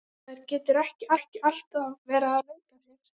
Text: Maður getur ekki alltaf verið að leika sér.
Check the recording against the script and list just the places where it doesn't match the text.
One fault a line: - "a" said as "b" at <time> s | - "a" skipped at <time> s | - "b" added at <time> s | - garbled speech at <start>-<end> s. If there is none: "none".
- "ekki" added at 1.2 s